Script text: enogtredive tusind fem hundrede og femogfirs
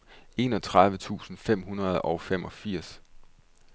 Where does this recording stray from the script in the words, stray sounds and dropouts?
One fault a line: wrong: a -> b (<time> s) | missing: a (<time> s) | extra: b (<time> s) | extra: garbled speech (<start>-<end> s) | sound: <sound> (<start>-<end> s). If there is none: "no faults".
no faults